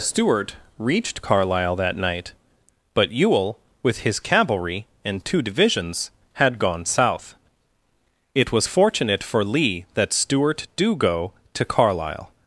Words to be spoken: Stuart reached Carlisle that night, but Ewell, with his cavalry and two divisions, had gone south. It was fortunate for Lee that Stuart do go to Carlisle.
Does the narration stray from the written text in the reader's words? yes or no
no